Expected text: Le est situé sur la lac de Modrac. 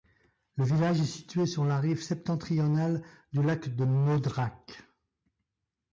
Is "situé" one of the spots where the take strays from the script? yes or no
no